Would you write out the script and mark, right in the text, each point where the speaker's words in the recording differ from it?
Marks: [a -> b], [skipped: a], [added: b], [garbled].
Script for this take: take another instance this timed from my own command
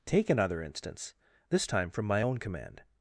take another instance this [timed -> time] from my own command